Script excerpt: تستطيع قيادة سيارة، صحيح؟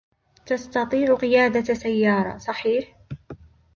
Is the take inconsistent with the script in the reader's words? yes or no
no